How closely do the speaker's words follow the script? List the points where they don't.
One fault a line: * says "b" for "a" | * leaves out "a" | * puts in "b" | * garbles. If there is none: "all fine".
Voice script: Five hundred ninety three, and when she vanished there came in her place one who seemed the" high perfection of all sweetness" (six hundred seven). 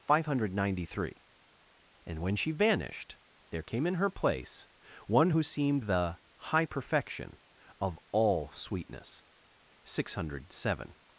all fine